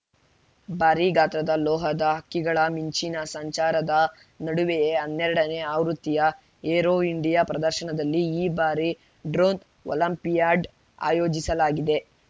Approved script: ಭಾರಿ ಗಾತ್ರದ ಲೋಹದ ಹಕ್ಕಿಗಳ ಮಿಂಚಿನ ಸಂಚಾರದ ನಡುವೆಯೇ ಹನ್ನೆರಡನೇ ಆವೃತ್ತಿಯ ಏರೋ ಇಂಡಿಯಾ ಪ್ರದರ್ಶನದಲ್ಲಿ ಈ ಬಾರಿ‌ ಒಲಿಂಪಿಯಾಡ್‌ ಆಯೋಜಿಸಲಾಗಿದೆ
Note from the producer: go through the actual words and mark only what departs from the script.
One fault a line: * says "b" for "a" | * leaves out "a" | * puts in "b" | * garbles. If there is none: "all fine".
* puts in "ಡ್ರೋನ್"